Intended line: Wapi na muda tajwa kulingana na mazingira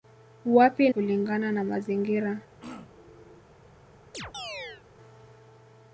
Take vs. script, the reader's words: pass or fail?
fail